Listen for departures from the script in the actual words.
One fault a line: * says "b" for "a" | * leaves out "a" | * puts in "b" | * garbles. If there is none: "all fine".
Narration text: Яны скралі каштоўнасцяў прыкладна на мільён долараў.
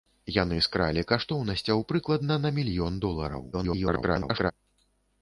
* garbles